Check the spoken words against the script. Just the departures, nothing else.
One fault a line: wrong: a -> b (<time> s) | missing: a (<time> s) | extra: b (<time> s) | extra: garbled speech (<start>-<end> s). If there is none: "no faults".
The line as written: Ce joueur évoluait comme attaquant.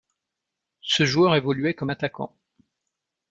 no faults